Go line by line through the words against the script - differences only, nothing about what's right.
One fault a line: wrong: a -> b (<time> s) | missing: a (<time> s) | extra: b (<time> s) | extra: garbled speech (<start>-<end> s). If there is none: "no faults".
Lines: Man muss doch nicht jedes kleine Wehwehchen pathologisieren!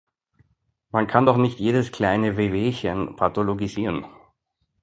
wrong: muss -> kann (1.1 s)